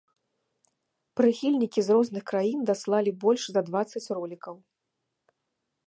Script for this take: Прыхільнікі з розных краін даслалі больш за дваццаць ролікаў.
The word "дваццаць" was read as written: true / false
true